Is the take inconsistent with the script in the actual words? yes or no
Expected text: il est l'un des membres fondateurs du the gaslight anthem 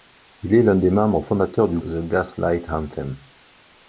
no